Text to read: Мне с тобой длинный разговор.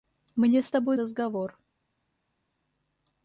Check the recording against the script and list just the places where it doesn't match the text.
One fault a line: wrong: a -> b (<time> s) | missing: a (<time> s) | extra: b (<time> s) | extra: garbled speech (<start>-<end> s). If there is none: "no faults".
missing: длинный (1.0 s)